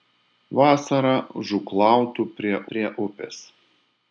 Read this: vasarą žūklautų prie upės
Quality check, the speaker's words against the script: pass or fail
fail